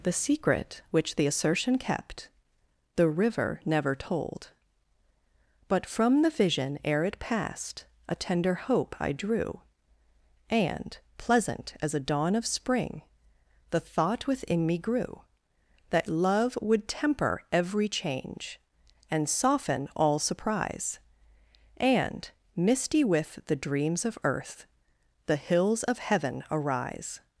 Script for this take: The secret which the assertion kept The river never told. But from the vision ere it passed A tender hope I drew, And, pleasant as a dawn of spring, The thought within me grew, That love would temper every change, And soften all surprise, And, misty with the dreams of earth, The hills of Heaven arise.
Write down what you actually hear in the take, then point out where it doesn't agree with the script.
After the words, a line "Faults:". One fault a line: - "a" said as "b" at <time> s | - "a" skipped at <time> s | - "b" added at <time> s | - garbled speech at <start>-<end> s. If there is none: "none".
The secret which the assertion kept The river never told. But from the vision ere it passed A tender hope I drew, And, pleasant as a dawn of spring, The thought within me grew, That love would temper every change, And soften all surprise, And, misty with the dreams of earth, The hills of Heaven arise.
Faults:
none